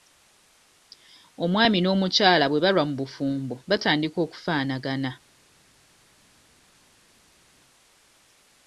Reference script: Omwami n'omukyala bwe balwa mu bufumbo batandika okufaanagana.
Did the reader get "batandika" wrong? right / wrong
right